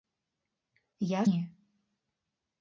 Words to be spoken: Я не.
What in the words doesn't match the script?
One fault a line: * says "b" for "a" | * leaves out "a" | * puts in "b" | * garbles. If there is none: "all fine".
all fine